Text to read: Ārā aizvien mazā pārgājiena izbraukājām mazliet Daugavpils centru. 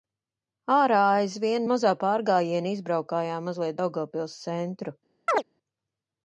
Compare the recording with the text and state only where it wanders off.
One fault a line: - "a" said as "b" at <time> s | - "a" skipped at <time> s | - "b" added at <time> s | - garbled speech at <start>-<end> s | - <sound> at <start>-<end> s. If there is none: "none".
- chirp at 5.3-5.4 s